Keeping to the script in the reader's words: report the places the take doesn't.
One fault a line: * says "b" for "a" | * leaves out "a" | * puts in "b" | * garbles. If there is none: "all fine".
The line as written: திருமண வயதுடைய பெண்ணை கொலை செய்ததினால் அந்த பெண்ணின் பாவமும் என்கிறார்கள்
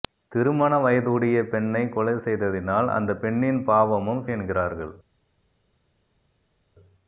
all fine